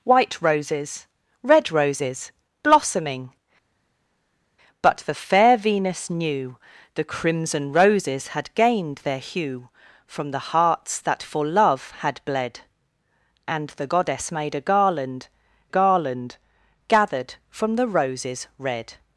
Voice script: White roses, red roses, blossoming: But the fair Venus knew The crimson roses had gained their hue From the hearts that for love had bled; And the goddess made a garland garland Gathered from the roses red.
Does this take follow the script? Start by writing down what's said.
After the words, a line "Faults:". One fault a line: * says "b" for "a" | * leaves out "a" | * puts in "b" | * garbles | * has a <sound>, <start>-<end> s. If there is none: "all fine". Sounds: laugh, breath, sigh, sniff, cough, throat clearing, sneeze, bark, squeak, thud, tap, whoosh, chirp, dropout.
White roses, red roses, blossoming: But the fair Venus knew The crimson roses had gained their hue From the hearts that for love had bled; And the goddess made a garland garland Gathered from the roses red.
Faults:
all fine